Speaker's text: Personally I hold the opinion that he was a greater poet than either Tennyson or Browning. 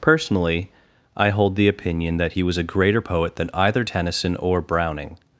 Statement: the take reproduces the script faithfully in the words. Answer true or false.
true